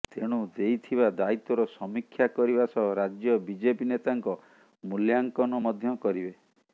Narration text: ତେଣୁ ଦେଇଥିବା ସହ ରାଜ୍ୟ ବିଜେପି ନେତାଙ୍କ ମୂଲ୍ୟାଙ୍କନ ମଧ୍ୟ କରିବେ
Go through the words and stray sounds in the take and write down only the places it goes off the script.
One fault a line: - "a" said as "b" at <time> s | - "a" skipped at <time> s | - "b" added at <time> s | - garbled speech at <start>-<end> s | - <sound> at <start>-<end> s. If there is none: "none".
- "ଦାୟିତ୍ୱର ସମୀକ୍ଷା କରିବା" added at 1.1 s